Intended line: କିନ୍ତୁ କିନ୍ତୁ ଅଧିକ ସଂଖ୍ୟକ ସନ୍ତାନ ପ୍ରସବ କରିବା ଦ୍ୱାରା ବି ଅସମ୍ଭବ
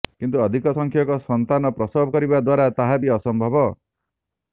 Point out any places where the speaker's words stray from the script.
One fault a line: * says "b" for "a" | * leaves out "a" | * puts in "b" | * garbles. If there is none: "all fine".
* leaves out "କିନ୍ତୁ"
* puts in "ତାହା"